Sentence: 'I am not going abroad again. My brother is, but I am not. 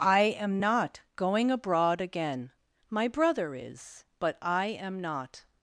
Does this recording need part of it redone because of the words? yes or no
no